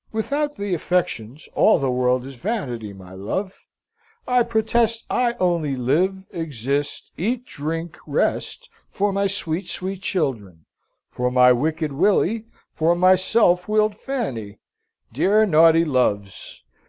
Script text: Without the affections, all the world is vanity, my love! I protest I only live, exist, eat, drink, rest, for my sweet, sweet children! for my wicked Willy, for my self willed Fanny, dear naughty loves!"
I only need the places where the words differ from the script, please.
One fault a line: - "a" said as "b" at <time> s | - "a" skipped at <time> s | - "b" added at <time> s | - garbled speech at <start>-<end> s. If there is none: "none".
none